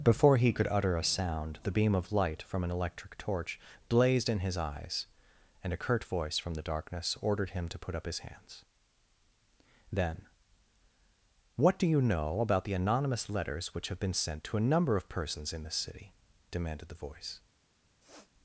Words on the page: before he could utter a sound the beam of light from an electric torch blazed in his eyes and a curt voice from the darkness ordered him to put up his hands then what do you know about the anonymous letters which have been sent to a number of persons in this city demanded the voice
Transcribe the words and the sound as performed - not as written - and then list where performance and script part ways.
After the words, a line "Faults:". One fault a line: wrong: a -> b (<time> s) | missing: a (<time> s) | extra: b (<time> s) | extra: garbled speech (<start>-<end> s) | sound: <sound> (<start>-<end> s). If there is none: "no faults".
before he could utter a sound the beam of light from an electric torch blazed in his eyes and a curt voice from the darkness ordered him to put up his hands then what do you know about the anonymous letters which have been sent to a number of persons in this city demanded the voice
Faults:
sound: sniff (18.0-18.3 s)